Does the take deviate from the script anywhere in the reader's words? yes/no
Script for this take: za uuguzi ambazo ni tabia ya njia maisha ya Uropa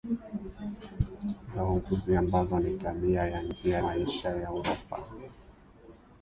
no